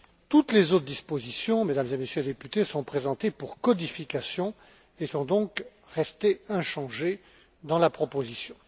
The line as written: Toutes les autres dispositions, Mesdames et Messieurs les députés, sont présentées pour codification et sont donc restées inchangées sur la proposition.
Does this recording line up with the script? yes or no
no